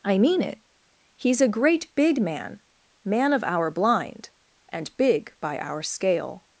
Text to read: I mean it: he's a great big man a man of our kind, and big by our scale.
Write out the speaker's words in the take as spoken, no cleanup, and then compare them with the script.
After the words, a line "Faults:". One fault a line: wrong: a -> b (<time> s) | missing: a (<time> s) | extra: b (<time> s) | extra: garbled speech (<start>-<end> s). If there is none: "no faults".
I mean it: he's a great big man man of our blind, and big by our scale.
Faults:
missing: a (2.6 s)
wrong: kind -> blind (3.7 s)